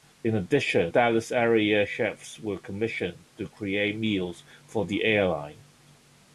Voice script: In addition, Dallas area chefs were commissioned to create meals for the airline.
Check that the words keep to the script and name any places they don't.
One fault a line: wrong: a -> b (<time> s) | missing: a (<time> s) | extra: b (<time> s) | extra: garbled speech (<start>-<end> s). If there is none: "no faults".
no faults